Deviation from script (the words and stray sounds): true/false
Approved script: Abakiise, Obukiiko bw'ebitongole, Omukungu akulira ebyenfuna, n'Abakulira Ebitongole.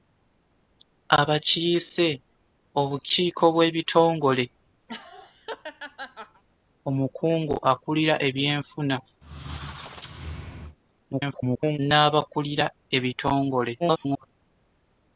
true